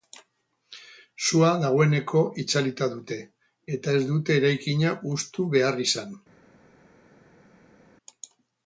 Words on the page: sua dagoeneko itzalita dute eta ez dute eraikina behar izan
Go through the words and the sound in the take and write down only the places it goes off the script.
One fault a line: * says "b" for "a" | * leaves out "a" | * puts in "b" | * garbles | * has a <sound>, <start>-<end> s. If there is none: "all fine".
* puts in "hustu"